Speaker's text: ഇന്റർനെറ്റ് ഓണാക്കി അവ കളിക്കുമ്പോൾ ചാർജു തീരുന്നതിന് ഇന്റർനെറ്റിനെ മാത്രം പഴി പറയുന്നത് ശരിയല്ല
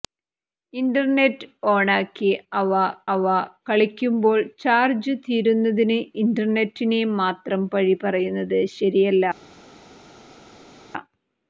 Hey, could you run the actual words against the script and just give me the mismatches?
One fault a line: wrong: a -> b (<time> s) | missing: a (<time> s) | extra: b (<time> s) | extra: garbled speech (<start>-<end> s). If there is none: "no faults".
extra: അവ (3.1 s)